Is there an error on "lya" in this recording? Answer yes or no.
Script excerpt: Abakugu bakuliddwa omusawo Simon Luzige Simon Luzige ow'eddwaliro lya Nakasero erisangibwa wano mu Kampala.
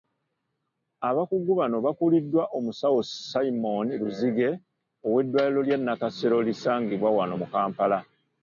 no